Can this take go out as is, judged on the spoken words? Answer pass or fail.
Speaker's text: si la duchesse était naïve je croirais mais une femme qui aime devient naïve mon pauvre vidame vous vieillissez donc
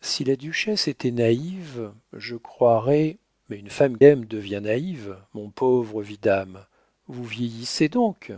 fail